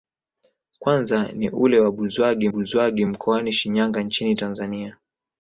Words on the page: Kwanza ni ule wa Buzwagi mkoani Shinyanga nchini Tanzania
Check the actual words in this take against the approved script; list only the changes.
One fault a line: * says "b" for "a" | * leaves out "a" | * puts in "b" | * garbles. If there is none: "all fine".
* puts in "Buzwagi"